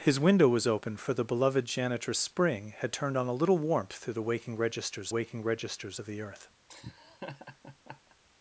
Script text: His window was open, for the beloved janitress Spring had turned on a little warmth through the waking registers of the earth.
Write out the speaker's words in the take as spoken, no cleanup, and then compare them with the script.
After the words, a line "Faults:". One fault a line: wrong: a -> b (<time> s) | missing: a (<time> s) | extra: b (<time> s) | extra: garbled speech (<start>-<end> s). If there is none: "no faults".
His window was open, for the beloved janitress Spring had turned on a little warmth through the waking registers waking registers of the earth.
Faults:
extra: waking registers (5.1 s)